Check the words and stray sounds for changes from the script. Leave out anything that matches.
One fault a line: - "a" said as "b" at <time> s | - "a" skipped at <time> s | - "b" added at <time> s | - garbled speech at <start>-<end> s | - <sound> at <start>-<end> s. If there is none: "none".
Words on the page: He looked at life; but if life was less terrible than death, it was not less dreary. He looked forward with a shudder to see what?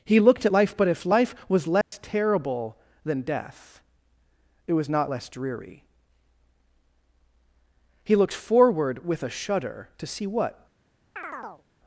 - dropout at 1.8-1.9 s
- chirp at 11.2-11.6 s